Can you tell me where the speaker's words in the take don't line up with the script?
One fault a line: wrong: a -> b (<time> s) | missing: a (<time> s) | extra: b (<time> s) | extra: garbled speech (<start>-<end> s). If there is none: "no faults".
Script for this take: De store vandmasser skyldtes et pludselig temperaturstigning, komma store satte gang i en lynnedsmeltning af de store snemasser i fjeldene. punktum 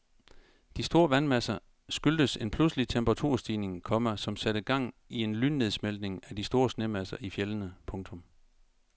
wrong: et -> en (2.4 s)
wrong: store -> som (4.2 s)